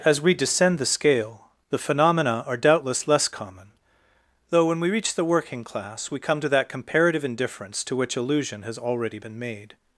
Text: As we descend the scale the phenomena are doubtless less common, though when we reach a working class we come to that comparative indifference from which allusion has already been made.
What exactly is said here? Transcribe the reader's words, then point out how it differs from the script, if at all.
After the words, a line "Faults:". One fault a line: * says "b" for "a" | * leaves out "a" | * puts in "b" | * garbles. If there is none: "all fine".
As we descend the scale the phenomena are doubtless less common, though when we reach the working class we come to that comparative indifference to which allusion has already been made.
Faults:
* says "the" for "a"
* says "to" for "from"